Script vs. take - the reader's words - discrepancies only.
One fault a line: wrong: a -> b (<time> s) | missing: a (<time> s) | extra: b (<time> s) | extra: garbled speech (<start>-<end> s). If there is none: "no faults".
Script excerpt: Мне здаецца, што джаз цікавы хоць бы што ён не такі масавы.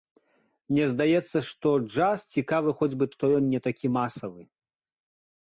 no faults